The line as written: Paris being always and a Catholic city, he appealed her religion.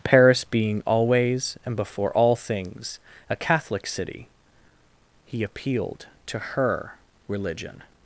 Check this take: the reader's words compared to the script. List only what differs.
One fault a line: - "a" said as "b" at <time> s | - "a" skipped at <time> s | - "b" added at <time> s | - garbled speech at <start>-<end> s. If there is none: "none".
- "before all things" added at 1.8 s
- "to" added at 6.3 s